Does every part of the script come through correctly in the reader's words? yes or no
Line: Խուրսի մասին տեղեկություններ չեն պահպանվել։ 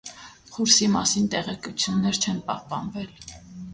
yes